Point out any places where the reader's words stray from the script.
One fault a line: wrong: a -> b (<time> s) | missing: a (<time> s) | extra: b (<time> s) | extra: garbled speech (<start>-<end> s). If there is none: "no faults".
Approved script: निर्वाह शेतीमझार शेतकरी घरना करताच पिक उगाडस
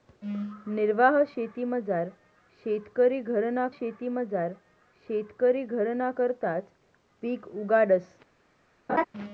extra: शेतीमझार शेतकरी घरना (3.7 s)